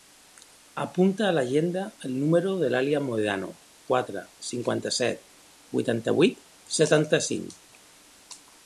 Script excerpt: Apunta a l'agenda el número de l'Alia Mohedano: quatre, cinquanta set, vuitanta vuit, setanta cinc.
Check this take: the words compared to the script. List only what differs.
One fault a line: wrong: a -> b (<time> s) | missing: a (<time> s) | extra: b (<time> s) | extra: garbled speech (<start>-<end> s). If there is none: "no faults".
no faults